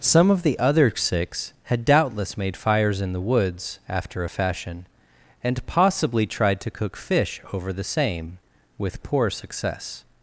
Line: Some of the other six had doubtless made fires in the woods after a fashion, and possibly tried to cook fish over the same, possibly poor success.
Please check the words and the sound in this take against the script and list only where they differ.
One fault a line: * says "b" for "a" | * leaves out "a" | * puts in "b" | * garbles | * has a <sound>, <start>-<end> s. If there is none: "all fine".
* says "with" for "possibly"